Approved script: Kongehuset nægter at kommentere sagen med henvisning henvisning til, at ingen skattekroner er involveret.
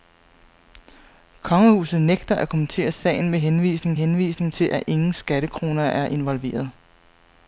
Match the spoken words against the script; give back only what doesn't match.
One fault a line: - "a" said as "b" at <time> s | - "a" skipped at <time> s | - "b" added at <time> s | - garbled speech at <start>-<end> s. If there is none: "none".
none